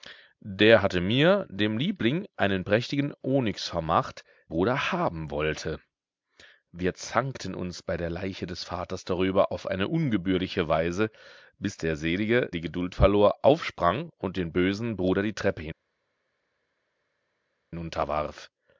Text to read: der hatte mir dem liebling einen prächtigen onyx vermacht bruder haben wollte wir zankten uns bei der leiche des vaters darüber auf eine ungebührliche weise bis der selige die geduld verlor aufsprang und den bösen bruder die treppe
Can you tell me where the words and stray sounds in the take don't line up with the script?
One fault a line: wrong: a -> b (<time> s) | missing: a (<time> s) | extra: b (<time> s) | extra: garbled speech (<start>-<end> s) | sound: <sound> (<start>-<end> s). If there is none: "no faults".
no faults